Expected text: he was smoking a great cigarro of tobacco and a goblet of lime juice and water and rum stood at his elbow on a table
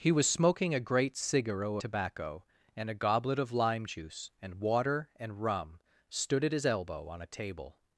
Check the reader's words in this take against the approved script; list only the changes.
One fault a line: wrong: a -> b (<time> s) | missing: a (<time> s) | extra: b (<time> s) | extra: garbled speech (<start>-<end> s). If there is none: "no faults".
missing: of (1.8 s)